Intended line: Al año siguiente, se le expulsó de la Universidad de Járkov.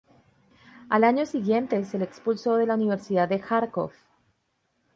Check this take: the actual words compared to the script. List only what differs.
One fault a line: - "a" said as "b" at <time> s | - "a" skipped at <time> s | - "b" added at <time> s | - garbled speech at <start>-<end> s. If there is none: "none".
none